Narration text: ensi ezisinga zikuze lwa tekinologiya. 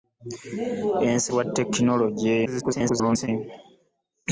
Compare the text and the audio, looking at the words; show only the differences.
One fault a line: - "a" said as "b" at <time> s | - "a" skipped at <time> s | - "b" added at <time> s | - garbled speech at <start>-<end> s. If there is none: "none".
- "ezisinga zikuze" skipped at 1.3 s
- garbled speech at 2.5-3.3 s